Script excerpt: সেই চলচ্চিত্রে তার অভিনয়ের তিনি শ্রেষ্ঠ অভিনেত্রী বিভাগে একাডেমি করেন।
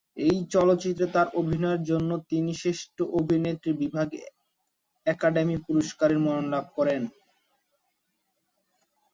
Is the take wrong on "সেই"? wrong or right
wrong